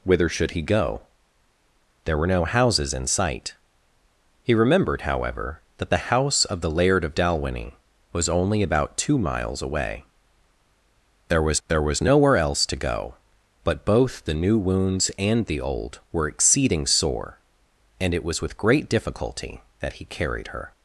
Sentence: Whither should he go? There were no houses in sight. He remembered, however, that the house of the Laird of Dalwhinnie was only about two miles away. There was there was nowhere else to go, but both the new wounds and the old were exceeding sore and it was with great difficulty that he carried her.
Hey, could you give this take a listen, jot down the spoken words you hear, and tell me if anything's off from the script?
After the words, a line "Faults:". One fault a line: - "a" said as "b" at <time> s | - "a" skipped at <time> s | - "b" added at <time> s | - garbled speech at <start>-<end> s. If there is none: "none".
Whither should he go? There were no houses in sight. He remembered, however, that the house of the Laird of Dalwhinnie was only about two miles away. There was there was nowhere else to go, but both the new wounds and the old were exceeding sore and it was with great difficulty that he carried her.
Faults:
none